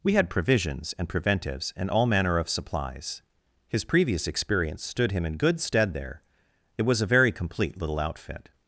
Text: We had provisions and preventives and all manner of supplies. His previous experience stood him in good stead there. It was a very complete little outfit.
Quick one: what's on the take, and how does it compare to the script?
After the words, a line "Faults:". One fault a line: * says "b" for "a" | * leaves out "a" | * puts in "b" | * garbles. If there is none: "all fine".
We had provisions and preventives and all manner of supplies. His previous experience stood him in good stead there. It was a very complete little outfit.
Faults:
all fine